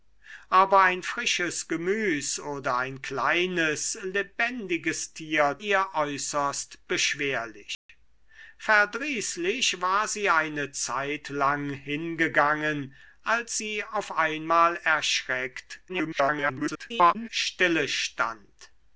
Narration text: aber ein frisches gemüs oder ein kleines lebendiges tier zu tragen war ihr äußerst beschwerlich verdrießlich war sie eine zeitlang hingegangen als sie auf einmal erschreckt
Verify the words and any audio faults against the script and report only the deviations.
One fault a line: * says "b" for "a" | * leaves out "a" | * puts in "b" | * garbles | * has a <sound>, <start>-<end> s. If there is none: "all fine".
* leaves out "zu tragen war"
* has a dropout, 7.7-7.9 s
* garbles